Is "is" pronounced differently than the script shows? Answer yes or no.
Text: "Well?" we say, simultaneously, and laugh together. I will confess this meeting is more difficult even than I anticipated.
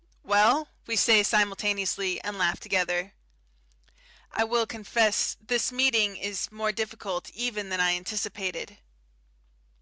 no